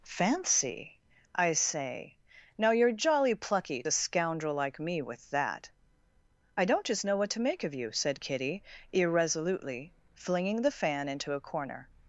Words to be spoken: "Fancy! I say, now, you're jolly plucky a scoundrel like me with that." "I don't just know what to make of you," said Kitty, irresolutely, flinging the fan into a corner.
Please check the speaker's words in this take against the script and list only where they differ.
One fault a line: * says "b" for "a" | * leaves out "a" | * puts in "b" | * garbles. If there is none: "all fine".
all fine